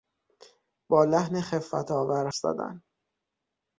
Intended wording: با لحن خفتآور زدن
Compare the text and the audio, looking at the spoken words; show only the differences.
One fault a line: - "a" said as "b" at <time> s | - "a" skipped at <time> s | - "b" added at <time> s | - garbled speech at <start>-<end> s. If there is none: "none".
none